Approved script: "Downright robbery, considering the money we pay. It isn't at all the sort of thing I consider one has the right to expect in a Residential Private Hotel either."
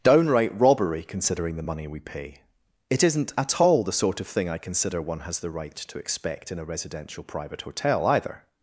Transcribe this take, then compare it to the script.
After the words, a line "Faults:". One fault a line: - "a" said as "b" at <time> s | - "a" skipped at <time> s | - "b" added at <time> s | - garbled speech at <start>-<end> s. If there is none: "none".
"Downright robbery, considering the money we pay. It isn't at all the sort of thing I consider one has the right to expect in a Residential Private Hotel either."
Faults:
none